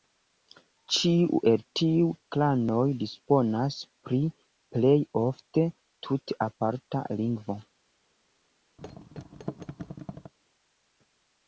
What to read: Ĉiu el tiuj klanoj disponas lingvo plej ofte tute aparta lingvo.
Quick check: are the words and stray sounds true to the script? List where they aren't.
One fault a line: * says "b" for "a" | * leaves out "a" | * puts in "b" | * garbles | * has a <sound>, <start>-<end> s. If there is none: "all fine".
* says "pri" for "lingvo"
* has a thud, 8.8-10.3 s